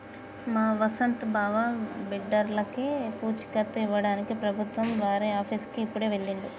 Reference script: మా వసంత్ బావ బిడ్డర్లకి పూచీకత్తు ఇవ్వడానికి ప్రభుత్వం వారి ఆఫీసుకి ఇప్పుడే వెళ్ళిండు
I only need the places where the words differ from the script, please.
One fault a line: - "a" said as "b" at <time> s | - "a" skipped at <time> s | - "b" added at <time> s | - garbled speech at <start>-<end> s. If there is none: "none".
none